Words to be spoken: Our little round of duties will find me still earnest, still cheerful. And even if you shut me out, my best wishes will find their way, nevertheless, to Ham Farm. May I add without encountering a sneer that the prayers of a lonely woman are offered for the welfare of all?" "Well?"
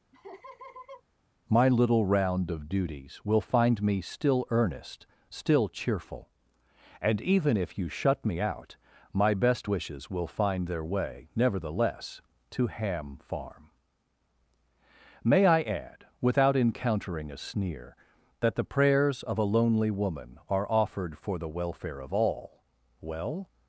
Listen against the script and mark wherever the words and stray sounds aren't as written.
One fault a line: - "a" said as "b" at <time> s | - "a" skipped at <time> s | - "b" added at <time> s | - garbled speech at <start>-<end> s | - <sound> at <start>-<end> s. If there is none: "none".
- laugh at 0.1-1.0 s
- "Our" said as "My" at 1.5 s